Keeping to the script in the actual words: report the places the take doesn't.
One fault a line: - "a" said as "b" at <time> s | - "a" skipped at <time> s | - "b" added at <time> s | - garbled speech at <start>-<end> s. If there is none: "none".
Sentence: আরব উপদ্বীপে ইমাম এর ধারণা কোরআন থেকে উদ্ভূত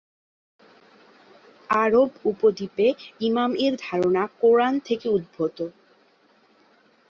none